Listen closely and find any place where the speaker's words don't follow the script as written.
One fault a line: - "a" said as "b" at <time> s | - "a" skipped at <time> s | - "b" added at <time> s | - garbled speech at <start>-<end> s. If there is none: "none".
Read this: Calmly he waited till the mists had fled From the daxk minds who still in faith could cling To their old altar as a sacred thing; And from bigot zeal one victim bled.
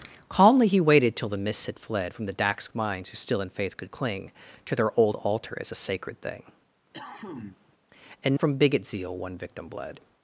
none